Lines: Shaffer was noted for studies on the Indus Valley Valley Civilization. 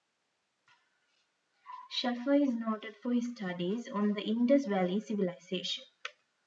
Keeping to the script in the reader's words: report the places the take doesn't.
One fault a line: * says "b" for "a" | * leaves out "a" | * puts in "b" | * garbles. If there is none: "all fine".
* says "is" for "was"
* puts in "his"
* leaves out "Valley"